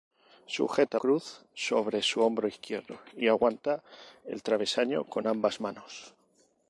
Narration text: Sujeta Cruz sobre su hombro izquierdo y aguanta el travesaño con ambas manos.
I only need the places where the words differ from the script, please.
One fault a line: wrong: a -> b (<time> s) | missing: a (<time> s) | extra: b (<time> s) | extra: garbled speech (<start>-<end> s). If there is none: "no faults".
no faults